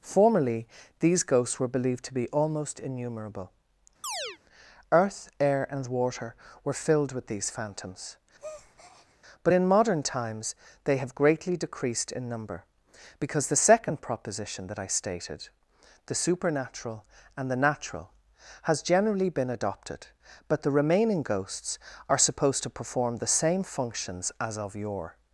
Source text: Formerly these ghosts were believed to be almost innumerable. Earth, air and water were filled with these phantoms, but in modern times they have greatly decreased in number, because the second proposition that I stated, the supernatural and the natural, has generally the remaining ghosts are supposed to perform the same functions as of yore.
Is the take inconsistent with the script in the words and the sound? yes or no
yes